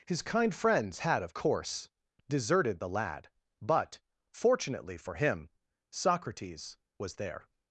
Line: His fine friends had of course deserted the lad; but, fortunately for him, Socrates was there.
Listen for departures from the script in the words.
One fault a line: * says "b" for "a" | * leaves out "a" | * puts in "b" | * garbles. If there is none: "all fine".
* says "kind" for "fine"